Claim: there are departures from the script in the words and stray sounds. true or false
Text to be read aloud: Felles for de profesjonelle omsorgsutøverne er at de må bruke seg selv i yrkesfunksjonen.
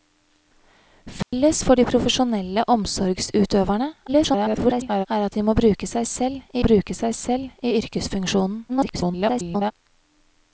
true